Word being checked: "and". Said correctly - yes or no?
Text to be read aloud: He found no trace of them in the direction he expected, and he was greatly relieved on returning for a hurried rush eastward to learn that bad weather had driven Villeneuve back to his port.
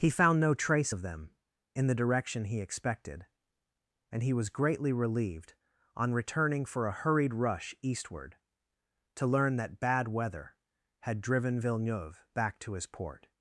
yes